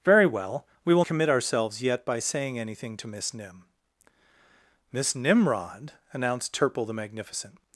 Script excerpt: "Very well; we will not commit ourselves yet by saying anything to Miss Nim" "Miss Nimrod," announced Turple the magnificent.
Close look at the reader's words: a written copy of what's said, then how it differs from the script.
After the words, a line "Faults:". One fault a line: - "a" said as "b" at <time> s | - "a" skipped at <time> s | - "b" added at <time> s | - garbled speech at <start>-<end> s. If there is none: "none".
"Very well; we will commit ourselves yet by saying anything to Miss Nim" "Miss Nimrod," announced Turple the magnificent.
Faults:
- "not" skipped at 1.1 s